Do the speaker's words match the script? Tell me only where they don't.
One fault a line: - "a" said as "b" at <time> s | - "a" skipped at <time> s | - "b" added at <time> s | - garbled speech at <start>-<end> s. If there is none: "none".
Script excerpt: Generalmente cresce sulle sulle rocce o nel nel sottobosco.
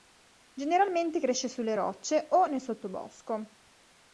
- "sulle" skipped at 1.8 s
- "nel" skipped at 2.6 s